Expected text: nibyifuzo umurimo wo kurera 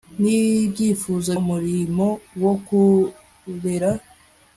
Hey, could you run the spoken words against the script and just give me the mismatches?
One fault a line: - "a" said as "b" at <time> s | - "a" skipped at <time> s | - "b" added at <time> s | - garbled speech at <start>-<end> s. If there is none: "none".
none